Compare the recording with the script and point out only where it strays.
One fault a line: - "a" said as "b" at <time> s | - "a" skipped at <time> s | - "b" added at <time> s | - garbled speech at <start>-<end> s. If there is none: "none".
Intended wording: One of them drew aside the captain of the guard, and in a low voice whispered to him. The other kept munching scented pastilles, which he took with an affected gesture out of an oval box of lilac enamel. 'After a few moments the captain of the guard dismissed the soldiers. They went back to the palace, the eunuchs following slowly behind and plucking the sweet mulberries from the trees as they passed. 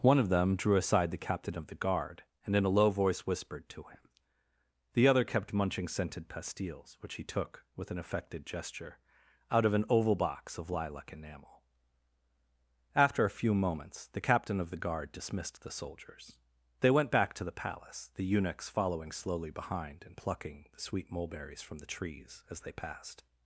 none